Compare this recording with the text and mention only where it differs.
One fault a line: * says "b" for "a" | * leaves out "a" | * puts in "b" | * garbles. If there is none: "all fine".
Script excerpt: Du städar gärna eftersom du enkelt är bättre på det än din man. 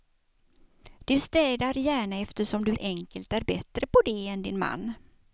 all fine